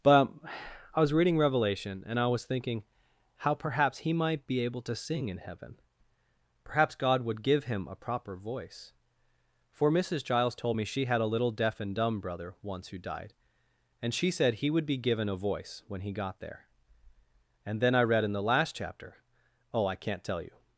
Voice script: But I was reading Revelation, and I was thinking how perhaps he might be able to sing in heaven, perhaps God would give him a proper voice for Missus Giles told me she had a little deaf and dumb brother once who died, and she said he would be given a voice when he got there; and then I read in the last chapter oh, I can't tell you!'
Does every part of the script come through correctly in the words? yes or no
yes